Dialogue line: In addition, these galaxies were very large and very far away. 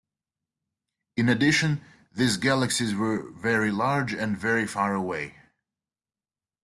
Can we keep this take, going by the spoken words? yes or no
yes